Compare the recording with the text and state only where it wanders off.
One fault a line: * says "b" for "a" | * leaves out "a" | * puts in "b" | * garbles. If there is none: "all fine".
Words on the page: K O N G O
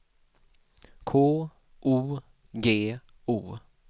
* leaves out "N"